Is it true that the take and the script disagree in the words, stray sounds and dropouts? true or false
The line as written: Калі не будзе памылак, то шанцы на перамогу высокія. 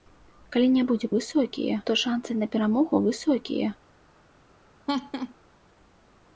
true